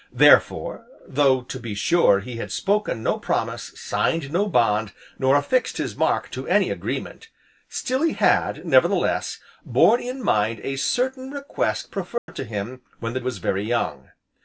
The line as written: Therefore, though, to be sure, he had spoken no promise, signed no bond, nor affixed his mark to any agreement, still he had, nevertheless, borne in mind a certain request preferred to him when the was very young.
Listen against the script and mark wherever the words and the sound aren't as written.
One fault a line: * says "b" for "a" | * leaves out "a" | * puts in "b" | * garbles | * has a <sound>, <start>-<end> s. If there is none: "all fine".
* has a dropout, 12.2-12.3 s